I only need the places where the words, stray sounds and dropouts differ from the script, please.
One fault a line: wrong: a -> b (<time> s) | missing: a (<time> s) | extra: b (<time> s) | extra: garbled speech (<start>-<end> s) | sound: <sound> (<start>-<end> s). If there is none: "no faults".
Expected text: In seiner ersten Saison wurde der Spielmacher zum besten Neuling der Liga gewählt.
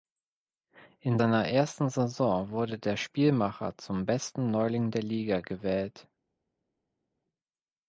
no faults